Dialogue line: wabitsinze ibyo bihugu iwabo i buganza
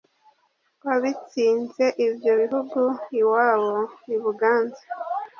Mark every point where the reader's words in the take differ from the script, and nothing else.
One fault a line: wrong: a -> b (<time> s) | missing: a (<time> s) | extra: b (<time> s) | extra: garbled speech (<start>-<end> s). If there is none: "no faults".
no faults